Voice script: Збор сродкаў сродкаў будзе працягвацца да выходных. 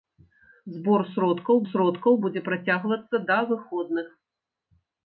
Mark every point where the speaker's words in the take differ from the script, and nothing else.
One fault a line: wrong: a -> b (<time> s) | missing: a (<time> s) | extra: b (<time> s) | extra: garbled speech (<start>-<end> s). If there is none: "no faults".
no faults